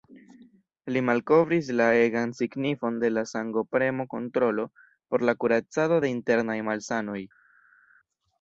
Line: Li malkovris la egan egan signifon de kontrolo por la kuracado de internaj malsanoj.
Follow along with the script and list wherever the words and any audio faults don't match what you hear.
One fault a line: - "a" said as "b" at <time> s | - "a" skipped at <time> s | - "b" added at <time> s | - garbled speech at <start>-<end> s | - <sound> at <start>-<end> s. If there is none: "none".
- "egan" skipped at 2.3 s
- "la sangopremo" added at 3.1 s